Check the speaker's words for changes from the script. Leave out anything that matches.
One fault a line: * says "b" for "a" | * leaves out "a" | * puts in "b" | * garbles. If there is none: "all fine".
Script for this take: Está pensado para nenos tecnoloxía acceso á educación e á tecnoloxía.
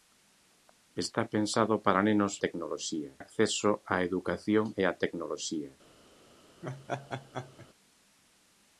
all fine